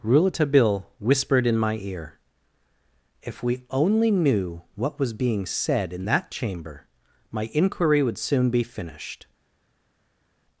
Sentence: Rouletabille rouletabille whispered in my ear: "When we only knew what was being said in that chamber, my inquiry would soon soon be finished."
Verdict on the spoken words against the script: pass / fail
fail